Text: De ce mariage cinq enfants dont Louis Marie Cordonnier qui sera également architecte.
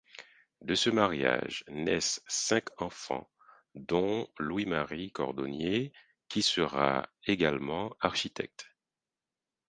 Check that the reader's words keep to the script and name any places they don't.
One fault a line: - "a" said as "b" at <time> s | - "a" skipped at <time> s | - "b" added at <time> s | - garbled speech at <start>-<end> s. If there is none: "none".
- "naissent" added at 1.7 s